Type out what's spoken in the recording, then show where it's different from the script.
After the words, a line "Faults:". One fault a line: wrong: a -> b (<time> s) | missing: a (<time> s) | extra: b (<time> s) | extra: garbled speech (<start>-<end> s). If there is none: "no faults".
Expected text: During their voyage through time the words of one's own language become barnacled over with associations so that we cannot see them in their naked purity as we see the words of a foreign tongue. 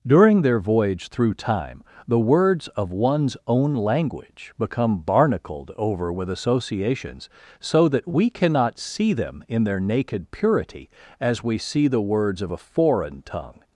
During their voyage through time the words of one's own language become barnacled over with associations so that we cannot see them in their naked purity as we see the words of a foreign tongue.
Faults:
no faults